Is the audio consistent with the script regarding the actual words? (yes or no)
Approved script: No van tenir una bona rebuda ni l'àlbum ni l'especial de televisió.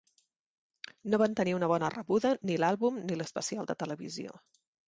yes